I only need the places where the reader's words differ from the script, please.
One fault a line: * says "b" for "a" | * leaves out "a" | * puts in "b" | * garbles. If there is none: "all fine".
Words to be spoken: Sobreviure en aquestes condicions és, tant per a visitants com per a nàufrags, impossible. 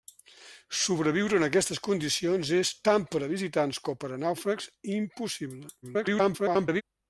* garbles